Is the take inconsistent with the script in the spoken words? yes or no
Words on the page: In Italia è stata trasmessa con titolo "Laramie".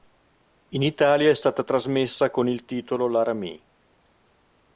yes